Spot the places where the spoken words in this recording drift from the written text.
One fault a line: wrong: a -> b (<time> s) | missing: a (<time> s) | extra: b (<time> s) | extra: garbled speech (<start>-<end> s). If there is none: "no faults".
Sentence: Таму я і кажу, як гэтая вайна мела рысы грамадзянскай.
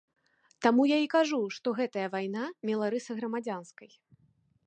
wrong: як -> што (1.6 s)